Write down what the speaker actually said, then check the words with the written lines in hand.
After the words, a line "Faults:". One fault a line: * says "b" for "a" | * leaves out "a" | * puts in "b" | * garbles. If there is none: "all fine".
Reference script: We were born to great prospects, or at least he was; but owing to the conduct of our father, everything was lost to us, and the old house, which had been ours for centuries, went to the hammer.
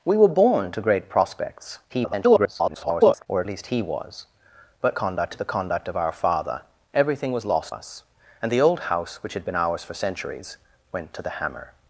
We were born to great prospects, [garbled] or at least he was; but conduct to the conduct of our father, everything was lost us, and the old house, which had been ours for centuries, went to the hammer.
Faults:
* garbles
* says "conduct" for "owing"
* leaves out "to"